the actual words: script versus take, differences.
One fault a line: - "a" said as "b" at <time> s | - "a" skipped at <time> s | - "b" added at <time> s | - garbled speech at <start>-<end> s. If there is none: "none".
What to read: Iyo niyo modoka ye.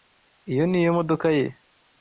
none